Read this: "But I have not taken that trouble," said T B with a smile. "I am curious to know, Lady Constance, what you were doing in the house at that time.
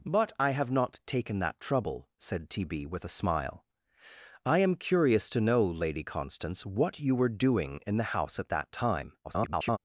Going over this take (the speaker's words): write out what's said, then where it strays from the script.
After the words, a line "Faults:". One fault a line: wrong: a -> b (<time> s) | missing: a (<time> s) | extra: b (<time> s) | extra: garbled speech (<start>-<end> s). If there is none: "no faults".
"But I have not taken that trouble," said T B with a smile. "I am curious to know, Lady Constance, what you were doing in the house at that time. [garbled]
Faults:
extra: garbled speech (9.2-9.8 s)